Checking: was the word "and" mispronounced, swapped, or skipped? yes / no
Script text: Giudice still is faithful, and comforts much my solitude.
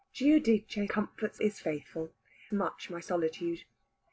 yes